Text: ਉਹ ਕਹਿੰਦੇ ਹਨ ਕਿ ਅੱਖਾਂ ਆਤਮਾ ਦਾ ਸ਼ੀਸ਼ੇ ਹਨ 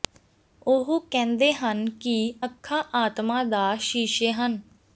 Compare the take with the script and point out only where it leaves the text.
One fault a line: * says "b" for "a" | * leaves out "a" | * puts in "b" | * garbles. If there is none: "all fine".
all fine